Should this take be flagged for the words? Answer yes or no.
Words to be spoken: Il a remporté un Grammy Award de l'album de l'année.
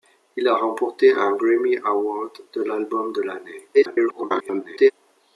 yes